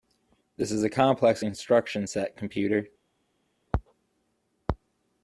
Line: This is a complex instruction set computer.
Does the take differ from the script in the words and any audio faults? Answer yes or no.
no